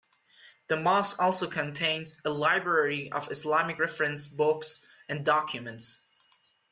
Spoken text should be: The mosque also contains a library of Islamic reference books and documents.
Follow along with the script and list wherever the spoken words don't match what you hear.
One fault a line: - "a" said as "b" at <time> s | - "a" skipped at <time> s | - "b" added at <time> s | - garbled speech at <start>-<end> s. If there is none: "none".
none